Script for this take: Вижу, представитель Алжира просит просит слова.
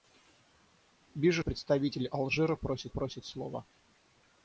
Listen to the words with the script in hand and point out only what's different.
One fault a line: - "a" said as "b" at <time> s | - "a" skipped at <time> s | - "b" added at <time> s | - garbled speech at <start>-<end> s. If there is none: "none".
none